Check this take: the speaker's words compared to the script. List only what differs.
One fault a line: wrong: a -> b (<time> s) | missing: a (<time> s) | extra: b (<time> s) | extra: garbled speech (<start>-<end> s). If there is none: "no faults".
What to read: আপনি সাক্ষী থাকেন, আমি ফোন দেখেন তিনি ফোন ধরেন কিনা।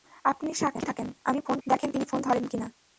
no faults